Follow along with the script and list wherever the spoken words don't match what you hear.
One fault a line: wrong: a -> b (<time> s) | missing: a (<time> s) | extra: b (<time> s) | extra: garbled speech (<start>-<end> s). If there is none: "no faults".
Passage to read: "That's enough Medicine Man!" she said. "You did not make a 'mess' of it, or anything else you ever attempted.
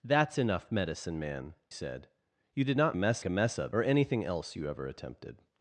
missing: she (1.6 s)
wrong: make -> mess (2.9 s)
missing: it (3.7 s)